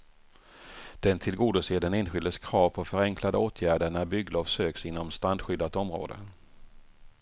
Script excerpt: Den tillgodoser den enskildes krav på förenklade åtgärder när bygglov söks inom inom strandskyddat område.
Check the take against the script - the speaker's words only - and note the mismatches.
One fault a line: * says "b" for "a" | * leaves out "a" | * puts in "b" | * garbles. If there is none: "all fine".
* leaves out "inom"